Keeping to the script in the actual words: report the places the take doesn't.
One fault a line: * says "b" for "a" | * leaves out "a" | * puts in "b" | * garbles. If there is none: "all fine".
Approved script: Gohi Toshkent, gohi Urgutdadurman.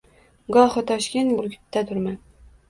* leaves out "gohi"